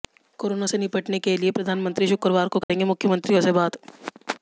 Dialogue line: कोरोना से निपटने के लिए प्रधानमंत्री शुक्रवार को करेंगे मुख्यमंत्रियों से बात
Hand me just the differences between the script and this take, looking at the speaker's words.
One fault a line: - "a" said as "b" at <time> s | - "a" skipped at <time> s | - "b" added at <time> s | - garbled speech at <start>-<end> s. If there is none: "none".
none